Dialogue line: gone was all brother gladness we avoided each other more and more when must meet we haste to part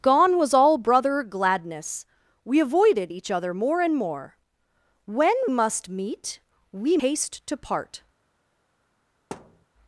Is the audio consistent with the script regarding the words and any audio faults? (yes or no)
no